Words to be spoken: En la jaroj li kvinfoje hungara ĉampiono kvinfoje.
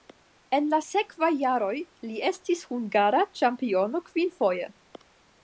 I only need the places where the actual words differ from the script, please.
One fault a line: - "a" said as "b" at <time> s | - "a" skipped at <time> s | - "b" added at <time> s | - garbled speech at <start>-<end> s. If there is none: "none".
- "sekvaj" added at 0.8 s
- "kvinfoje" said as "estis" at 2.3 s